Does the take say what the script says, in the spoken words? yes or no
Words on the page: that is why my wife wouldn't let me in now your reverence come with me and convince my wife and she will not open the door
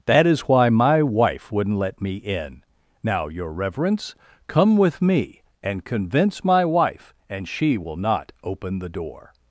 yes